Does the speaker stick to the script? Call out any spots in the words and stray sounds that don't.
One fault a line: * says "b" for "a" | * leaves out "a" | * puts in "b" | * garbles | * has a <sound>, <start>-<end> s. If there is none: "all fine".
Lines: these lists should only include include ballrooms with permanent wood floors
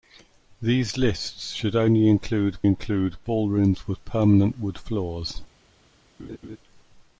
* has a laugh, 6.2-6.6 s